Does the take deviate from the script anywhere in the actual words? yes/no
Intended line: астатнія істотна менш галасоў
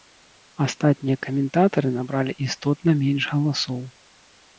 yes